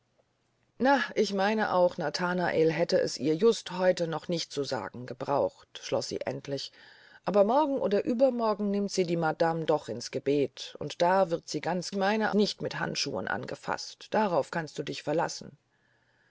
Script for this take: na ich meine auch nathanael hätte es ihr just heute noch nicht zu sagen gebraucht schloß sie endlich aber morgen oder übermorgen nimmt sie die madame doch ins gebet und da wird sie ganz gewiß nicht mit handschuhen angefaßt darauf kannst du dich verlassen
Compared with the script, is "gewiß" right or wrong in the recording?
wrong